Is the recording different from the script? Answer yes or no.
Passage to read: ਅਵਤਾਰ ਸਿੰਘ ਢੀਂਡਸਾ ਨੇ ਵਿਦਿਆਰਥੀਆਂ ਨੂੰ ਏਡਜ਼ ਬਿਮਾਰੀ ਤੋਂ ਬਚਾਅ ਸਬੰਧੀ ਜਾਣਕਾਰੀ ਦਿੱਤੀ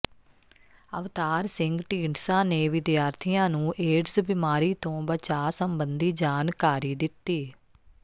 no